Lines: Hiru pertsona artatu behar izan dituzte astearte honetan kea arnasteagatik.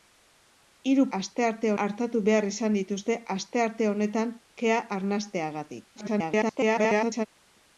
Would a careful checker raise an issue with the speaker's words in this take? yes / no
yes